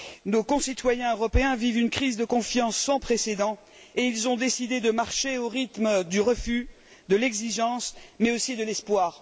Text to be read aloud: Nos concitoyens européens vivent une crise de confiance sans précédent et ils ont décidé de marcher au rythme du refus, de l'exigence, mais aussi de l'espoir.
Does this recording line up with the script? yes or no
yes